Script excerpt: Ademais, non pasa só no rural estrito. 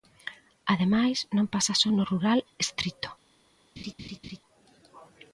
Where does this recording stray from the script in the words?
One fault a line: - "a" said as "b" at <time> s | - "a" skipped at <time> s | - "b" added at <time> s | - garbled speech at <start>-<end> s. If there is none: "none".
none